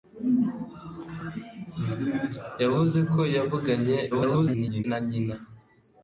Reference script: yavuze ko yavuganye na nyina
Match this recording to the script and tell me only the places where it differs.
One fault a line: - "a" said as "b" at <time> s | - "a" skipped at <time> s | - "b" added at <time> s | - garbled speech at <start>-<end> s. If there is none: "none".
- garbled speech at 4.1-4.8 s